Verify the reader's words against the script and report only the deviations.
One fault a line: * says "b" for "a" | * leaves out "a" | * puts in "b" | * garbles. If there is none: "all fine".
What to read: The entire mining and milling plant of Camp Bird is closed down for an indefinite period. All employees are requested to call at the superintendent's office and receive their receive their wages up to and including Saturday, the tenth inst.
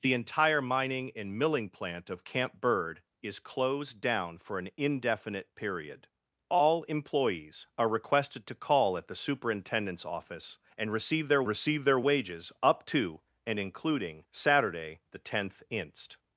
all fine